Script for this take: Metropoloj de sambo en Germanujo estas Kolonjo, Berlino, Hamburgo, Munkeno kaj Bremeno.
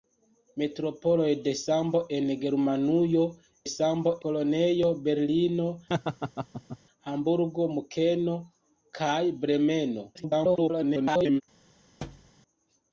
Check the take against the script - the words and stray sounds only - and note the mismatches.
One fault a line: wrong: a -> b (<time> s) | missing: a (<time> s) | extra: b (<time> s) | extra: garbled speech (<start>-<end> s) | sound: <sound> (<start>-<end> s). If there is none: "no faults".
wrong: estas -> sambo (3.7 s)
sound: laugh (5.9-6.8 s)
extra: garbled speech (10.1-11.4 s)
sound: thud (12.0-12.3 s)